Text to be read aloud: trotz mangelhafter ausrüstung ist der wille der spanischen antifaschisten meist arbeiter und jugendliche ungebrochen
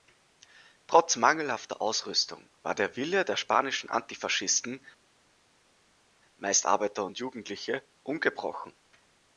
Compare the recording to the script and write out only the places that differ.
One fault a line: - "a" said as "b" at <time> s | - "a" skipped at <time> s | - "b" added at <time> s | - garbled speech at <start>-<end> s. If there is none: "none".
- "ist" said as "war" at 2.6 s